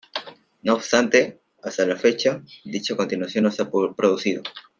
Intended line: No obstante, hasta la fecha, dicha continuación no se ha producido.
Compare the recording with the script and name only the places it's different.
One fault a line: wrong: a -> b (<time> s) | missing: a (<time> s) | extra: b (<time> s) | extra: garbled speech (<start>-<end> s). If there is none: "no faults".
no faults